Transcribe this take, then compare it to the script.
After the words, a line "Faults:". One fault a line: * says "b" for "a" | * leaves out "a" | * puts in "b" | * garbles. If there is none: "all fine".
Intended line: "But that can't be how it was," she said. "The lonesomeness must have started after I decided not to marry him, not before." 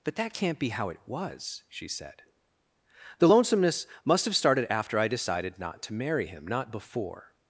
"But that can't be how it was," she said. "The lonesomeness must have started after I decided not to marry him, not before."
Faults:
all fine